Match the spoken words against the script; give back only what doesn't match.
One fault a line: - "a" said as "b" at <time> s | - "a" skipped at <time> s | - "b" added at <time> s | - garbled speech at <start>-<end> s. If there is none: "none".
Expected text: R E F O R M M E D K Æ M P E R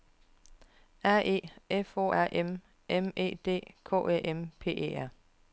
none